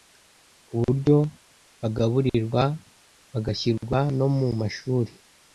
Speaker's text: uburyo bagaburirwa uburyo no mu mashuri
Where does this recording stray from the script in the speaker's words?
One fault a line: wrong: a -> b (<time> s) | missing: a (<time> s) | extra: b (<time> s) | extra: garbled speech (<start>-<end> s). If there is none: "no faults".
wrong: uburyo -> bagashyirwa (3.3 s)